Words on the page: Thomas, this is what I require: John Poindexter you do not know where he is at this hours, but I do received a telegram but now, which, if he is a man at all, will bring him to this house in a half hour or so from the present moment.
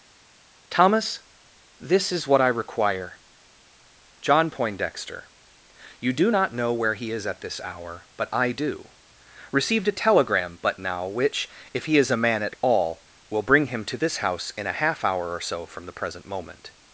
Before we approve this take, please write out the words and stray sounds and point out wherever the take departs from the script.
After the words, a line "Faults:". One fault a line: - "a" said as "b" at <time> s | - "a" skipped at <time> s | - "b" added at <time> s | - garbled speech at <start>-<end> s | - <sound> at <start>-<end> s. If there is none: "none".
Thomas, this is what I require: John Poindexter you do not know where he is at this hour, but I do received a telegram but now, which, if he is a man at all, will bring him to this house in a half hour or so from the present moment.
Faults:
- "hours" said as "hour" at 7.6 s